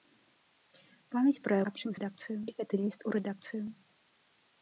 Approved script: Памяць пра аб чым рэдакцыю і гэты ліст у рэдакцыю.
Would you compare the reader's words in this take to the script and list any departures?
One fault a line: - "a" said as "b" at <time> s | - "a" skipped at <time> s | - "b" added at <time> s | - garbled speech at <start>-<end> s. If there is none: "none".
none